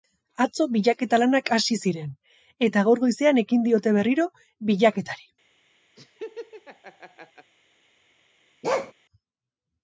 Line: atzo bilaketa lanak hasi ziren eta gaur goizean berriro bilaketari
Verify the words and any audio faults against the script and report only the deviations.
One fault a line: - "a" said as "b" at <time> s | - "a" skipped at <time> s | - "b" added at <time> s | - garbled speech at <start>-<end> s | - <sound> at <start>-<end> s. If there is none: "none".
- "ekin diote" added at 3.4 s
- laugh at 6.0-7.5 s
- bark at 8.6-8.9 s